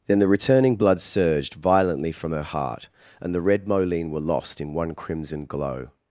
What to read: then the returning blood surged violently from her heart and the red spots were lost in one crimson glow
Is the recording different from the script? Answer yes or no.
yes